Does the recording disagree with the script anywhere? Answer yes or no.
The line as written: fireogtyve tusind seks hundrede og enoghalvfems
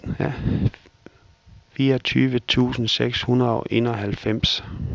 no